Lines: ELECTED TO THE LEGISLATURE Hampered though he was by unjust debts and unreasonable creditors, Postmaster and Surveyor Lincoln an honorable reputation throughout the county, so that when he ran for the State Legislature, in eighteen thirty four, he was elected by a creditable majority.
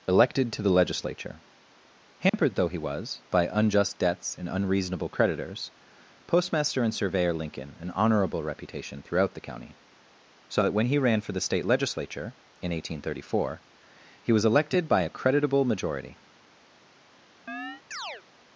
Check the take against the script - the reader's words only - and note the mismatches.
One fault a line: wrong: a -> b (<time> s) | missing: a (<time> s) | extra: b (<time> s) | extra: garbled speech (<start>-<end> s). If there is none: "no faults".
no faults